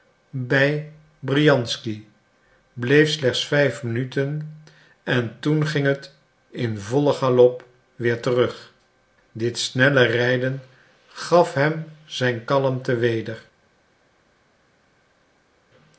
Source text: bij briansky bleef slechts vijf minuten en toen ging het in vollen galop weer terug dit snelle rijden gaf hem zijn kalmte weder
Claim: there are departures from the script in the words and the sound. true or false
false